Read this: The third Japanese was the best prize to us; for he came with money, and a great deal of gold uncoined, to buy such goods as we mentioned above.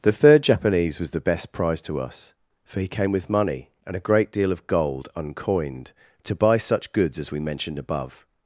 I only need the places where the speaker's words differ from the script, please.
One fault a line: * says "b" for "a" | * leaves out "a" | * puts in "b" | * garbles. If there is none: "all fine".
all fine